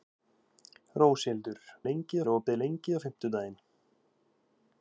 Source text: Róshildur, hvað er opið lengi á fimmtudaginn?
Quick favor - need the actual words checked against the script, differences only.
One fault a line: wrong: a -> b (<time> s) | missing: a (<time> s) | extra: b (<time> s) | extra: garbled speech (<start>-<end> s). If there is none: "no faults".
wrong: hvað -> lengi (1.9 s)